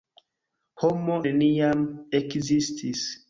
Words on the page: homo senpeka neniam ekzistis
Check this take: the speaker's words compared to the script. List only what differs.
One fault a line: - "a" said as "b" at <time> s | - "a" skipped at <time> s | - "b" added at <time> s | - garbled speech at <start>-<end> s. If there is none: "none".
- "senpeka" skipped at 1.2 s